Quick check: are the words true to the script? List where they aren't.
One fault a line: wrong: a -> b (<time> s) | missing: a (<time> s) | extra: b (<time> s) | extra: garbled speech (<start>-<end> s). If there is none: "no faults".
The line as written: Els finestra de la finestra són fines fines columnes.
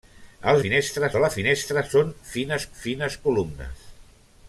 no faults